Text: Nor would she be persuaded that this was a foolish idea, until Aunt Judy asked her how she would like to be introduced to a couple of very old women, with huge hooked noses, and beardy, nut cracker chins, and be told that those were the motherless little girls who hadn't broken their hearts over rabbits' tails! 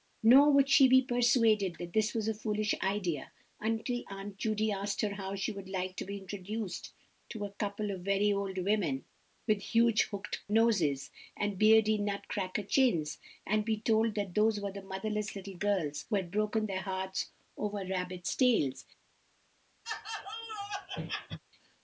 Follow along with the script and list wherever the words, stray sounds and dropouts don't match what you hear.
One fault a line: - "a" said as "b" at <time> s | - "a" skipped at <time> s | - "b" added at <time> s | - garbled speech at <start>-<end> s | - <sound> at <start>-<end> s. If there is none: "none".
- "hadn't" said as "had" at 16.2 s
- laugh at 19.8-21.4 s